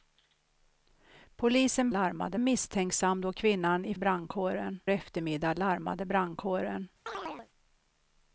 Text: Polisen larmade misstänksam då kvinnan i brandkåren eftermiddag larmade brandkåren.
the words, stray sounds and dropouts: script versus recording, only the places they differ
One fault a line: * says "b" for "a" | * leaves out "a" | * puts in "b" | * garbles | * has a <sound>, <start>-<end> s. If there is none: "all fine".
* has a chirp, 7.1-7.5 s